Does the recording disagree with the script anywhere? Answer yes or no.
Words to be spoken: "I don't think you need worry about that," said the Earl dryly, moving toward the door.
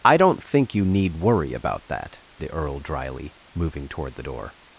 yes